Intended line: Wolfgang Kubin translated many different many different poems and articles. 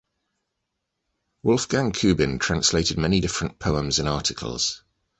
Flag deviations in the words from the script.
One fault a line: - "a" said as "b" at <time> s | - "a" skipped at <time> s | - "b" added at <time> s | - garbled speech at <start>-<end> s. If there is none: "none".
- "many different" skipped at 3.6 s